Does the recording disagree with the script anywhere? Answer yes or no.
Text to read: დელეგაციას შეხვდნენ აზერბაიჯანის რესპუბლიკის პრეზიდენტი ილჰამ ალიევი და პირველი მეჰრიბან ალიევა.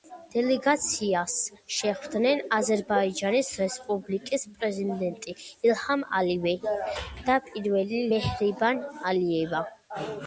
no